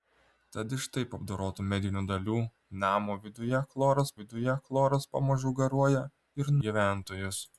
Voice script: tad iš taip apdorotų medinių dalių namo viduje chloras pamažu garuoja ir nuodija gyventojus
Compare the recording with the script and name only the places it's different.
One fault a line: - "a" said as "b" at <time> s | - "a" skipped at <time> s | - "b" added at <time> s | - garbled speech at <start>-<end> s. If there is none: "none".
- "viduje chloras" added at 4.2 s
- "nuodija" skipped at 6.6 s